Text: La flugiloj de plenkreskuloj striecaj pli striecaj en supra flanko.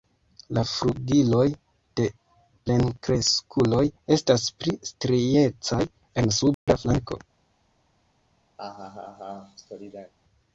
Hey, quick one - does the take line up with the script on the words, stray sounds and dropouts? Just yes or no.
no